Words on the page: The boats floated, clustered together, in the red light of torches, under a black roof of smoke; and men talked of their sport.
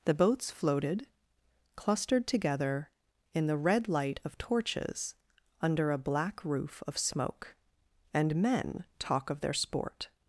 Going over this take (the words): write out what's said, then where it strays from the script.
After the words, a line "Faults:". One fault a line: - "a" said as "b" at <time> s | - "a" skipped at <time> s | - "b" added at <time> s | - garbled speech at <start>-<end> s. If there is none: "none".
The boats floated, clustered together, in the red light of torches, under a black roof of smoke; and men talk of their sport.
Faults:
- "talked" said as "talk" at 9.0 s